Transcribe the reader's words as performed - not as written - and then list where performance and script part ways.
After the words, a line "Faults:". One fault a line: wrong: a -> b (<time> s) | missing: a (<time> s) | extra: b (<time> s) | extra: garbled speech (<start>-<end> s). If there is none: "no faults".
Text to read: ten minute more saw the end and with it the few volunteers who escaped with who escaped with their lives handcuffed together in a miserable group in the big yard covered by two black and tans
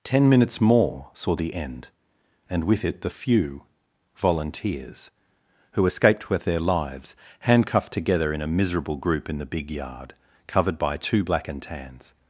ten minutes more saw the end and with it the few volunteers who escaped with their lives handcuffed together in a miserable group in the big yard covered by two black and tans
Faults:
wrong: minute -> minutes (0.3 s)
missing: who escaped with (6.4 s)